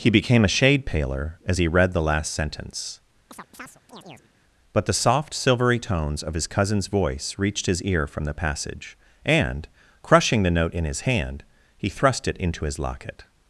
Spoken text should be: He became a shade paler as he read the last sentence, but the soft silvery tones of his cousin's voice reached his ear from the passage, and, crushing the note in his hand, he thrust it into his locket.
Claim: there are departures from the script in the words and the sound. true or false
true